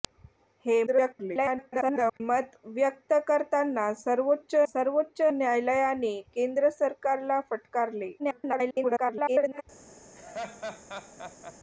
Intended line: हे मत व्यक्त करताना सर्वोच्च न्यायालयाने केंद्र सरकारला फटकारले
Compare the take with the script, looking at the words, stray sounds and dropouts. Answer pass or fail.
fail